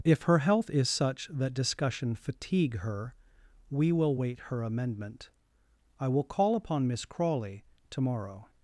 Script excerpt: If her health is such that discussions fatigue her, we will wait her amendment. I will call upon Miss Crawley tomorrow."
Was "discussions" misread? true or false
true